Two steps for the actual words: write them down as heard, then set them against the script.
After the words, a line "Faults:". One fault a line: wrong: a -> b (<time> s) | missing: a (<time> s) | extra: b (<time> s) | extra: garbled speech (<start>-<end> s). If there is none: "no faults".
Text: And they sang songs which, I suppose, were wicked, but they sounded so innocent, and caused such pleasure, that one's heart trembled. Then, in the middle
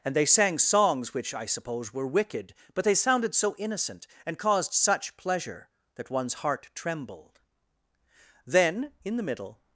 And they sang songs which, I suppose, were wicked, but they sounded so innocent, and caused such pleasure, that one's heart trembled. Then, in the middle
Faults:
no faults